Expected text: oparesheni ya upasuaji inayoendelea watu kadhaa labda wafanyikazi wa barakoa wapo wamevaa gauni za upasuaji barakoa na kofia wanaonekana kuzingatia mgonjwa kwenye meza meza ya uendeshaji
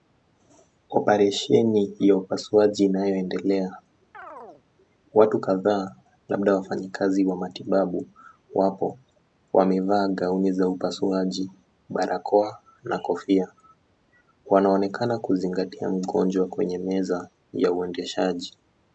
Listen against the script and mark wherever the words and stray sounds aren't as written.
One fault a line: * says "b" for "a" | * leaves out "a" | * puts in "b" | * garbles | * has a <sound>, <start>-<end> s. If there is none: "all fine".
* has a chirp, 4.1-4.6 s
* says "matibabu" for "barakoa"
* leaves out "meza"